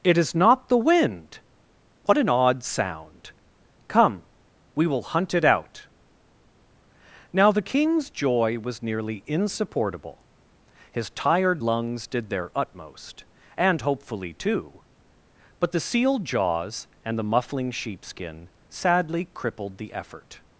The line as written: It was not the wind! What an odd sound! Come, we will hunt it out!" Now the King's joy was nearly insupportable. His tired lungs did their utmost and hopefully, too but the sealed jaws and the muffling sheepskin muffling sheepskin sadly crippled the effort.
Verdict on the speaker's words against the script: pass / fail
fail